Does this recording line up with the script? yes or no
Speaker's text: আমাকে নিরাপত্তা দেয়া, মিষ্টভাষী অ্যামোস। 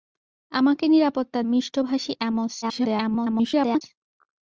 no